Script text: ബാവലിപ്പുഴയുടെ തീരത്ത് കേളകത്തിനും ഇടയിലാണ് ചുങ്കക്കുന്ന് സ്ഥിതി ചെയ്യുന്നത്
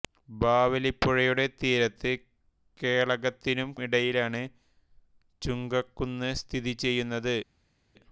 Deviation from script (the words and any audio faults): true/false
false